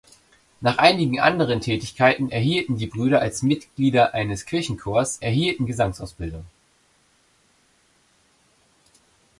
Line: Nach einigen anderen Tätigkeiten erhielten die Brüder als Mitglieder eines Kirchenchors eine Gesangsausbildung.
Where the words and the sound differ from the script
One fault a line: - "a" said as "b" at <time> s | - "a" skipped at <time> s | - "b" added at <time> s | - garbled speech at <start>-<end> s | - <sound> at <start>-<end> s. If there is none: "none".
- "eine" said as "erhielten" at 5.2 s